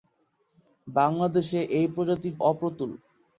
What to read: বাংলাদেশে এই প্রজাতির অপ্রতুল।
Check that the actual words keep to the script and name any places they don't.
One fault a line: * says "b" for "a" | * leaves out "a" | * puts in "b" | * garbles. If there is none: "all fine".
all fine